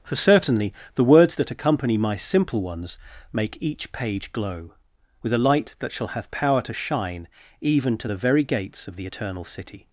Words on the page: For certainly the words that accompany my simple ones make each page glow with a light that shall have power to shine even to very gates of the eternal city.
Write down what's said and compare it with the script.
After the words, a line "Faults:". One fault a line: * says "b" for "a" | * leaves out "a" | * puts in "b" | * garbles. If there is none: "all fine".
For certainly the words that accompany my simple ones make each page glow with a light that shall have power to shine even to the very gates of the eternal city.
Faults:
* puts in "the"